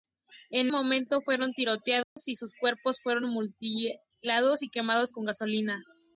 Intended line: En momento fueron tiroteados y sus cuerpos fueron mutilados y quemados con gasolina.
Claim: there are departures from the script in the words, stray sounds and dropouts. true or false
true